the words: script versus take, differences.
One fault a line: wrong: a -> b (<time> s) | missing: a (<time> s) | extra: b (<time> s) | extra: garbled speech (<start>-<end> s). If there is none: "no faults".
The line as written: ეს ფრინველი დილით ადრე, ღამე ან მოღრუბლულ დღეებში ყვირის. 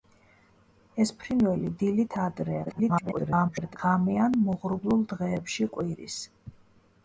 extra: garbled speech (2.7-3.8 s)